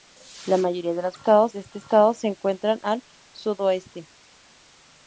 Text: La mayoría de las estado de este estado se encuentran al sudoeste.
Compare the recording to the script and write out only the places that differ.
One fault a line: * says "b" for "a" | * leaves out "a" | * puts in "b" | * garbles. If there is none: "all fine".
all fine